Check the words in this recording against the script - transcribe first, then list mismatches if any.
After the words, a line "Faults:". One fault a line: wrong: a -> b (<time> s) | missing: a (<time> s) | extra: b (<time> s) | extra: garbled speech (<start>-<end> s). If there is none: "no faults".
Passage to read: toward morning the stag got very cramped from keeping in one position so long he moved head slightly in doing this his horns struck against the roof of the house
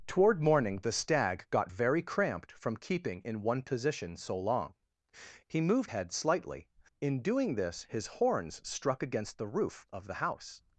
toward morning the stag got very cramped from keeping in one position so long he moved head slightly in doing this his horns struck against the roof of the house
Faults:
no faults